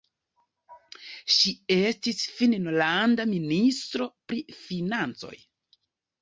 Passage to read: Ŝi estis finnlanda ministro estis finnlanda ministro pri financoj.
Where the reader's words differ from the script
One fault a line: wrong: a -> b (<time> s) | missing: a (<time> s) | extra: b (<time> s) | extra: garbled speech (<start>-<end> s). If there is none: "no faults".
missing: estis finnlanda ministro (4.1 s)